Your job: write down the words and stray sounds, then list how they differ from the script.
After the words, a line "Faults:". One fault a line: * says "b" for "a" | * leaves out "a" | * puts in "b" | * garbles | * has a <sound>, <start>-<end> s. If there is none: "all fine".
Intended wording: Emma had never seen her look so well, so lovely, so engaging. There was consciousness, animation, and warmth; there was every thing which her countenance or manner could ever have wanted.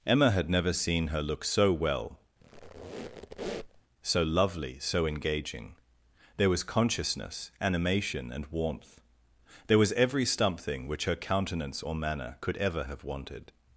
Emma had never seen her look so well, so lovely, so engaging. There was consciousness, animation, and warmth; there was every something which her countenance or manner could ever have wanted.
Faults:
* has a squeak, 2.4-3.8 s
* says "something" for "thing"